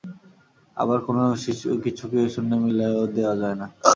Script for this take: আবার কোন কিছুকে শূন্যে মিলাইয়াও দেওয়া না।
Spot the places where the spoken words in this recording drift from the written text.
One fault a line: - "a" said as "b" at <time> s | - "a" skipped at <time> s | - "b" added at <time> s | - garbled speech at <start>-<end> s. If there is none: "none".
- "যায়" added at 3.4 s